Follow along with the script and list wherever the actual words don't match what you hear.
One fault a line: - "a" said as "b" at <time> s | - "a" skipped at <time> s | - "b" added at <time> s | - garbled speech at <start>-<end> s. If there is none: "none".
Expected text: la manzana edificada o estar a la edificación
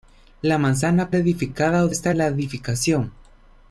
none